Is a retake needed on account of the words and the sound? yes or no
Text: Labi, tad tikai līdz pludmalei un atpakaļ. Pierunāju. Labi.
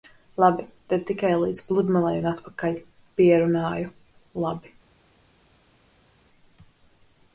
no